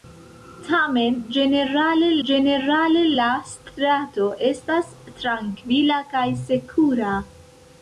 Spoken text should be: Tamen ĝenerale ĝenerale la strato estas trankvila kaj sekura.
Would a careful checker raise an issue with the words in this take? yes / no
no